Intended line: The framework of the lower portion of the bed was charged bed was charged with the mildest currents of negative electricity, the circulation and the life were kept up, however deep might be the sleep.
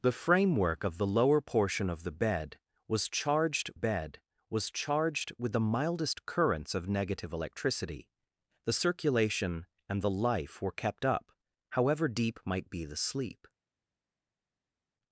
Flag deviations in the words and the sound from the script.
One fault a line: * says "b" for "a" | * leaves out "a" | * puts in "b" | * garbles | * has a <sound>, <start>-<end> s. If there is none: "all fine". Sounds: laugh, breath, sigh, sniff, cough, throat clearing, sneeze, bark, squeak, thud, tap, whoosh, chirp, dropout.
all fine